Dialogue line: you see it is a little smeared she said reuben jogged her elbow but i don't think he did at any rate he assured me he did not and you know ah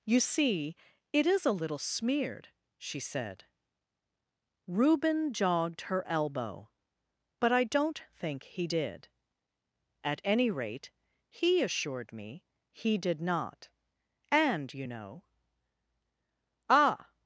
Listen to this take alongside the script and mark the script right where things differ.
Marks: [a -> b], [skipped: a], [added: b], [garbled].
you see it is a little smeared she said reuben jogged her elbow but i don't think he did at any rate he assured me he did not and you know ah